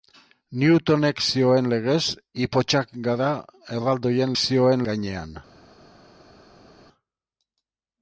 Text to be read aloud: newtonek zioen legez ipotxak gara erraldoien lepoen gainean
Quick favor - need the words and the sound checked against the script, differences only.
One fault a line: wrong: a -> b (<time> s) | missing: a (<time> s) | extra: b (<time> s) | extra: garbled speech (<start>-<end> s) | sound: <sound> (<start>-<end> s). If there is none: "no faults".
wrong: lepoen -> zioen (4.4 s)